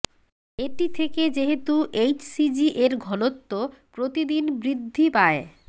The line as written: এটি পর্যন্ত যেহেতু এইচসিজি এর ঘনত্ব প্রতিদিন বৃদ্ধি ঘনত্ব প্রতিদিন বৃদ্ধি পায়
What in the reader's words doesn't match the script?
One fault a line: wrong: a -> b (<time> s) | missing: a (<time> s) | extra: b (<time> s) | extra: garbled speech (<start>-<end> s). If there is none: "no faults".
wrong: পর্যন্ত -> থেকে (0.9 s)
missing: ঘনত্ব প্রতিদিন বৃদ্ধি (5.1 s)